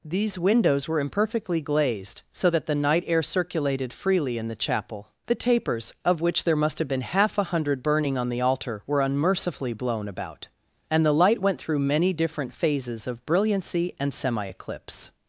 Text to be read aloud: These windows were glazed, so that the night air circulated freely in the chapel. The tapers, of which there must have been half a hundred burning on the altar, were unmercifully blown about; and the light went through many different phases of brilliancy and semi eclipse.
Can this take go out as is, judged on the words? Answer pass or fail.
fail